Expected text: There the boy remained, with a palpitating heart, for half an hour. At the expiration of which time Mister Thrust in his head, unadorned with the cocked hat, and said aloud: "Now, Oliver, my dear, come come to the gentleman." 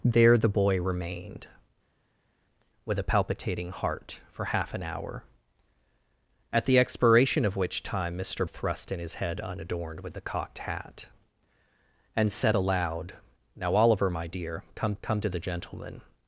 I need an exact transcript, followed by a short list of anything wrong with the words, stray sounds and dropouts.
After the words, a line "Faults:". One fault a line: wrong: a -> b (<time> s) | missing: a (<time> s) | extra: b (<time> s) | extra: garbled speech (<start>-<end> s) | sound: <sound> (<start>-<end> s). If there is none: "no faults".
There the boy remained, with a palpitating heart, for half an hour. At the expiration of which time Mister Thrust in his head, unadorned with the cocked hat, and said aloud: "Now, Oliver, my dear, come come to the gentleman."
Faults:
no faults